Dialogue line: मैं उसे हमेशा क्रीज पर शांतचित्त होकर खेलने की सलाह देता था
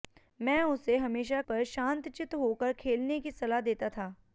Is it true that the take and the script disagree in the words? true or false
true